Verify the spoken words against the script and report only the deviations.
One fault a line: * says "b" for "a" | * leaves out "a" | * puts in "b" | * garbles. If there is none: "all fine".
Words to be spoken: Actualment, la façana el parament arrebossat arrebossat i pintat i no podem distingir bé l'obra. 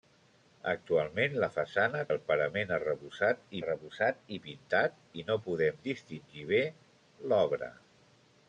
all fine